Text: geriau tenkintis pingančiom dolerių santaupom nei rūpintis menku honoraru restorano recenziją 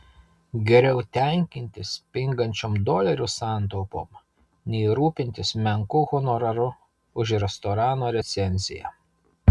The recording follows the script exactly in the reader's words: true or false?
false